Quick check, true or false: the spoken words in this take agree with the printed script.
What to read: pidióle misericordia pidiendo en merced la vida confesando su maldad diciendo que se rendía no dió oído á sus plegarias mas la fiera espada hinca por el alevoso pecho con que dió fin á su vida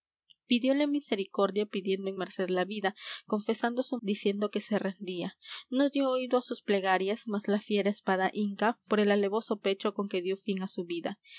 false